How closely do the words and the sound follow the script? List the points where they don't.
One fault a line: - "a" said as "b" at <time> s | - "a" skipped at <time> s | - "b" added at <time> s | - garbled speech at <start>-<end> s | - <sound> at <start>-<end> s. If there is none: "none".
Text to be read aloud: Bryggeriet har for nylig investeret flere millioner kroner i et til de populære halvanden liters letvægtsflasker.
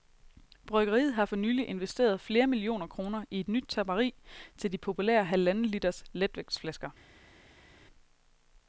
- "nyt tapperi" added at 3.5 s